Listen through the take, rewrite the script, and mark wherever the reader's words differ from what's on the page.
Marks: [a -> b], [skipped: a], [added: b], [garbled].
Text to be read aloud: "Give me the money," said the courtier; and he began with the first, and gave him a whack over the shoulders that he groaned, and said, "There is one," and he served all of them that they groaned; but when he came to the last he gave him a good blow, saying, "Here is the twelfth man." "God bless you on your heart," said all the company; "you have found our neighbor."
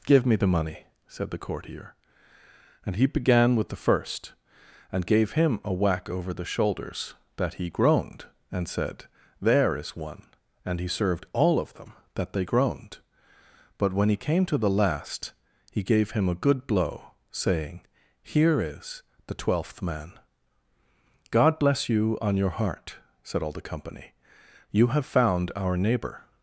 "Give me the money," said the courtier; and he began with the first, and gave him a whack over the shoulders that he groaned, and said, "There is one," and he served all of them that they groaned; but when he came to the last he gave him a good blow, saying, "Here is the twelfth man." "God bless you on your heart," said all the company; "you have found our neighbor."